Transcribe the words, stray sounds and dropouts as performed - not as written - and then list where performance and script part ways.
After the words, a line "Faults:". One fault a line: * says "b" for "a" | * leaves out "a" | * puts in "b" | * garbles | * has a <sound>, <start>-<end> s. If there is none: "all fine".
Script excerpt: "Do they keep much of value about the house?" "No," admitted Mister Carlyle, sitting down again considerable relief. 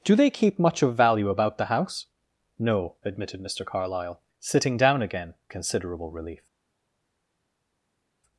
"Do they keep much of value about the house?" "No," admitted Mister Carlyle, sitting down again considerable relief.
Faults:
all fine